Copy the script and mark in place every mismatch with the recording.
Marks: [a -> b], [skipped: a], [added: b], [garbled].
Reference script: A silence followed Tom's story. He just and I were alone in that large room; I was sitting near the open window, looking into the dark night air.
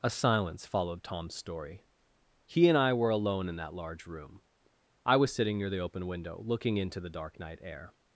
A silence followed Tom's story. He [skipped: just] and I were alone in that large room; I was sitting near the open window, looking into the dark night air.